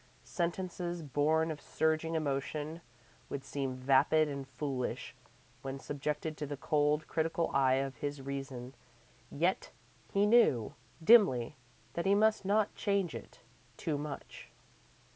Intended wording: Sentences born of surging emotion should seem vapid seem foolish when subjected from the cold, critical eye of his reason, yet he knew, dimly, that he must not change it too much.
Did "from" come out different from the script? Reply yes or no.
yes